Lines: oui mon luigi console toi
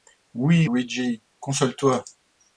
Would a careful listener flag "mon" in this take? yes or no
yes